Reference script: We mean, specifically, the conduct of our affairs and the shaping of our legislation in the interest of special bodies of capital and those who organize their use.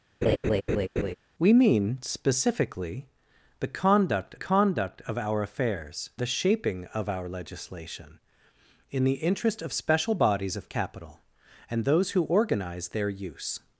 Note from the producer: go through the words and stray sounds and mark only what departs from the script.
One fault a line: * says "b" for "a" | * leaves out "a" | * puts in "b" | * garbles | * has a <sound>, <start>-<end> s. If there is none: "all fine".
* has a laugh, 0.2-1.1 s
* puts in "conduct"
* leaves out "and"